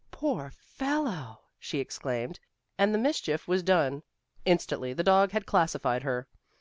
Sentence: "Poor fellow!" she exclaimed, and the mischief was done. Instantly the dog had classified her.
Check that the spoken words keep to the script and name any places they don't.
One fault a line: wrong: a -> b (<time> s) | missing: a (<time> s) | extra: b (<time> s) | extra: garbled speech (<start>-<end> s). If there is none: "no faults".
no faults